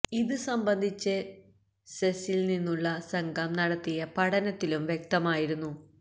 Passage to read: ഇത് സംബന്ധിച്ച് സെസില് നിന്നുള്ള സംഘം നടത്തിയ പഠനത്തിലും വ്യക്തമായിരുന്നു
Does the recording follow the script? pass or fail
pass